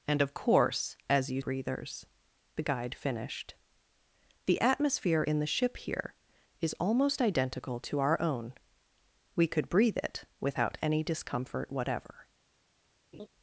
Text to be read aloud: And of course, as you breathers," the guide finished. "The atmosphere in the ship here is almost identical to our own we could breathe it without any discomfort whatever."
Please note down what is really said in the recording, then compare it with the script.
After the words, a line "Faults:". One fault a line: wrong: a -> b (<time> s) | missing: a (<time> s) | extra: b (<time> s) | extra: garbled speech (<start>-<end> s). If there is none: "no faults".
And of course, as you breathers," the guide finished. "The atmosphere in the ship here is almost identical to our own we could breathe it without any discomfort whatever."
Faults:
no faults